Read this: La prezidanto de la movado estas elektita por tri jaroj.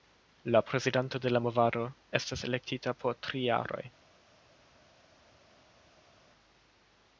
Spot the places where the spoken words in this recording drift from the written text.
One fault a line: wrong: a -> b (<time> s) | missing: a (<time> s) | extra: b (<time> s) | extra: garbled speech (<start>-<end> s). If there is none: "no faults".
no faults